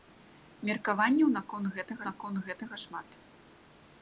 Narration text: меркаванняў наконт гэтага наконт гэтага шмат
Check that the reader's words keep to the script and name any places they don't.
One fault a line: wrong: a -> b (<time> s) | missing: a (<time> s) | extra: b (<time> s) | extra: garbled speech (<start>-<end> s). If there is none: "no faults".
no faults